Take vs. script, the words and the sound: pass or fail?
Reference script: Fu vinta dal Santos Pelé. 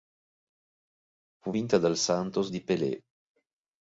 fail